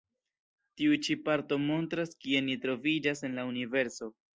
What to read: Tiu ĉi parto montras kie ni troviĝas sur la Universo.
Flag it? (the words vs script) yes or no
yes